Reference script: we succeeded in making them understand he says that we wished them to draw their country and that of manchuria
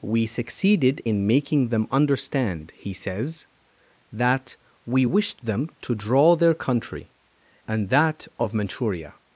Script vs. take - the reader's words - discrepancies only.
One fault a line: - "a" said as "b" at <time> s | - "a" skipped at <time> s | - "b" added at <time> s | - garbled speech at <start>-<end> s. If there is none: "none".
none